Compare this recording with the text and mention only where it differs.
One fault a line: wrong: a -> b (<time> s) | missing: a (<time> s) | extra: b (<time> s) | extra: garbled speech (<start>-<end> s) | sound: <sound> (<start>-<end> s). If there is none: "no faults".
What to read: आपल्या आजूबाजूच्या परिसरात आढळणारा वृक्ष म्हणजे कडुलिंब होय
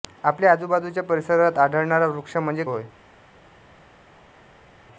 missing: कडुलिंब (2.6 s)